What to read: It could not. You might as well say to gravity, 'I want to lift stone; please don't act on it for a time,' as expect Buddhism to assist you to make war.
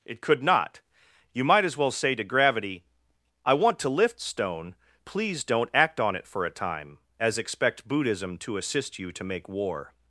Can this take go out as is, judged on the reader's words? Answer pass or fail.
pass